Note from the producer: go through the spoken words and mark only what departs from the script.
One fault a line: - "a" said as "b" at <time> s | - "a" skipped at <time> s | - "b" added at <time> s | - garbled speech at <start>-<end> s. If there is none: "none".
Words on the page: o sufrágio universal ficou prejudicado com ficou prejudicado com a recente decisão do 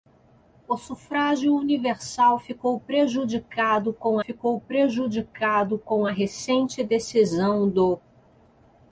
none